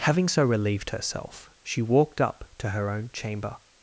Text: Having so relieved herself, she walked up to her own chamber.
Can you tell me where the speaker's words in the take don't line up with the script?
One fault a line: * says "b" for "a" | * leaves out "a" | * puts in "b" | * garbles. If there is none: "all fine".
all fine